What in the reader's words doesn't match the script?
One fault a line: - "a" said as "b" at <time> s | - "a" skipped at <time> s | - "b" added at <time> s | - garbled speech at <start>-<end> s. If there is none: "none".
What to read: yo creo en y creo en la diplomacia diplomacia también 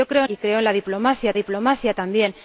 none